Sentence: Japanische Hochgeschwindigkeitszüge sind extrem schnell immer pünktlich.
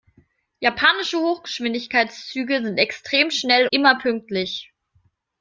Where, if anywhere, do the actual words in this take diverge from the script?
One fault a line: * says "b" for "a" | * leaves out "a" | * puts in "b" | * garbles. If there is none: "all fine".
all fine